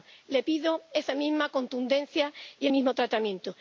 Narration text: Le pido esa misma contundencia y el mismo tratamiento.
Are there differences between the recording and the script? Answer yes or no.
no